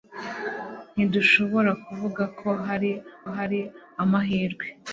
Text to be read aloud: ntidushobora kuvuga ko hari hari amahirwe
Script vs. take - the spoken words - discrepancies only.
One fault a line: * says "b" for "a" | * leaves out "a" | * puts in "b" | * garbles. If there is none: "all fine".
all fine